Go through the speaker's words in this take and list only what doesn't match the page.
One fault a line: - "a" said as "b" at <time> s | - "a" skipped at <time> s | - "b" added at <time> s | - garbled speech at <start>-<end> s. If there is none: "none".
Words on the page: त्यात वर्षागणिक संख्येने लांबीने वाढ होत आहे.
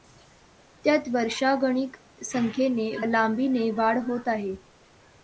none